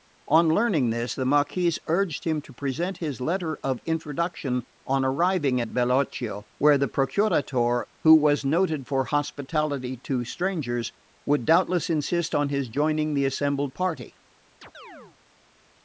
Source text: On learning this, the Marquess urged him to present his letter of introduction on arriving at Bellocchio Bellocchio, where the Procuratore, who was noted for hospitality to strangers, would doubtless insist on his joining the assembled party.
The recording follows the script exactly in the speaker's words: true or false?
false